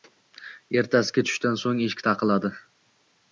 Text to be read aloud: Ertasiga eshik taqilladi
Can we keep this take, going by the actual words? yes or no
no